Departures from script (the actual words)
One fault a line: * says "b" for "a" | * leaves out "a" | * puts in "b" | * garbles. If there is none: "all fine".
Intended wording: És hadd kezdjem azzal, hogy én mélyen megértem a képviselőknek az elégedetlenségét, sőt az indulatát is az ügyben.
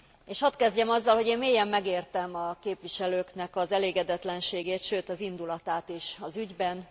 all fine